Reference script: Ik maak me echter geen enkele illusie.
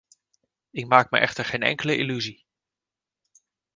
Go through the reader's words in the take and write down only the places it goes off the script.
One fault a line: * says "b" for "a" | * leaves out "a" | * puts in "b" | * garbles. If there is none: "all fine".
all fine